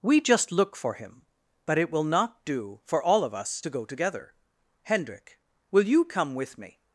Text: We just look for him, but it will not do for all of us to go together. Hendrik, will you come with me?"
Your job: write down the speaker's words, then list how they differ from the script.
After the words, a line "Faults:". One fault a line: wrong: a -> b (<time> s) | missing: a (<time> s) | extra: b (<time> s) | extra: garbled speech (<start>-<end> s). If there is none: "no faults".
We just look for him, but it will not do for all of us to go together. Hendrik, will you come with me?"
Faults:
no faults